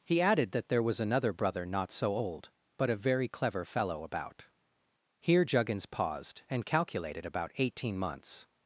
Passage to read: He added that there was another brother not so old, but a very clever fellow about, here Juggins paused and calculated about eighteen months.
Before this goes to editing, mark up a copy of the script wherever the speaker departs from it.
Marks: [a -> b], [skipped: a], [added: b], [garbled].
He added that there was another brother not so old, but a very clever fellow about, here Juggins paused and calculated about eighteen months.